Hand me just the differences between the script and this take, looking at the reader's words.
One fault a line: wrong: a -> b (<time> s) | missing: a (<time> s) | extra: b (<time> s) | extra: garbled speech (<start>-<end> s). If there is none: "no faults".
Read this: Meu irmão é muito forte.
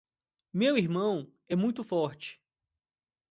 no faults